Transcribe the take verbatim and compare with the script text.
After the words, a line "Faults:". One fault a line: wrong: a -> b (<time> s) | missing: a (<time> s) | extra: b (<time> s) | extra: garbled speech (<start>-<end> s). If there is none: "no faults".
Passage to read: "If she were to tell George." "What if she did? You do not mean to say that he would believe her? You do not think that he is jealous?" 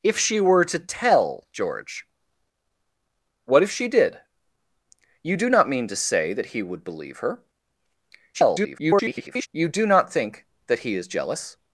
"If she were to tell George." "What if she did? You do not mean to say that he would believe her? [garbled] You do not think that he is jealous?"
Faults:
extra: garbled speech (8.3-9.5 s)